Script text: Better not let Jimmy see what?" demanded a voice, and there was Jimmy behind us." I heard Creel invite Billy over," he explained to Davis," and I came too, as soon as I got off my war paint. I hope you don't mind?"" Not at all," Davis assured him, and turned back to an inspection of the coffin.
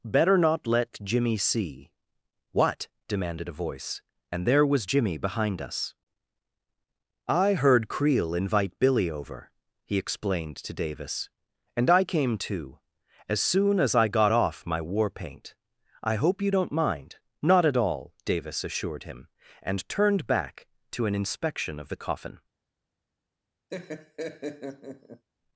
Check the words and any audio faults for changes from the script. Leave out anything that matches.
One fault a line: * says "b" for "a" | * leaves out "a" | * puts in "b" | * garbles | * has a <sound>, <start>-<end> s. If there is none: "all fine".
* has a laugh, 23.7-25.3 s